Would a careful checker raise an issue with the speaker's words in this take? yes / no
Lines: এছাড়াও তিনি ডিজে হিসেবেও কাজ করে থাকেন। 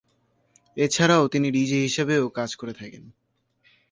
no